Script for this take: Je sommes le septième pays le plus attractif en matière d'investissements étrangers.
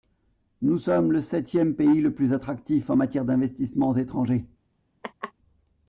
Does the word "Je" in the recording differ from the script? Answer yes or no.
yes